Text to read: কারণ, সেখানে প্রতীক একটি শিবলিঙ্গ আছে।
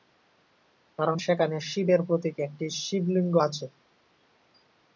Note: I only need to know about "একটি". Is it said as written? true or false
true